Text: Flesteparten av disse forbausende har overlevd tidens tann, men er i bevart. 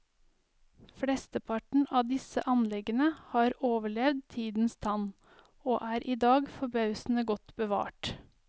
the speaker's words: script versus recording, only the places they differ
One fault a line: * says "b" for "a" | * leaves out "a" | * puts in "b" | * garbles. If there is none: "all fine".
* says "anleggene" for "forbausende"
* says "og" for "men"
* puts in "dag forbausende godt"